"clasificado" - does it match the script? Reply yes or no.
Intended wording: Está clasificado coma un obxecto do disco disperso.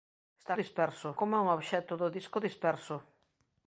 no